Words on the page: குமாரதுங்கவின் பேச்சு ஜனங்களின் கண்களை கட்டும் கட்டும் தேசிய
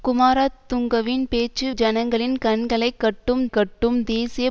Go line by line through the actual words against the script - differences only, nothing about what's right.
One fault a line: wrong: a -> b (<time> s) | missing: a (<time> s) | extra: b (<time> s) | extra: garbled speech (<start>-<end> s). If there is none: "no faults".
no faults